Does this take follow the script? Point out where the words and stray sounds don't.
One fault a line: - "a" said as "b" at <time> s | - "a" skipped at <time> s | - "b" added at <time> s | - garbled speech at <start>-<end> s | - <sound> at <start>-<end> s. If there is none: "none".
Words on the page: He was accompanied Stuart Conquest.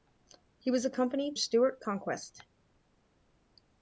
none